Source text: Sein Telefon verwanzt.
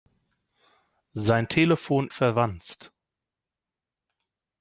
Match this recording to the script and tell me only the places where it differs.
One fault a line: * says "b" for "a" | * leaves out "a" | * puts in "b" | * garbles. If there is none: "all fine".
all fine